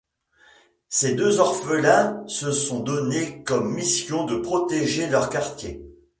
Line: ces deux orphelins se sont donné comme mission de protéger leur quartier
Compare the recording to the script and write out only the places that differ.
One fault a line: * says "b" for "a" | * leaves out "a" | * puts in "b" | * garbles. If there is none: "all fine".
all fine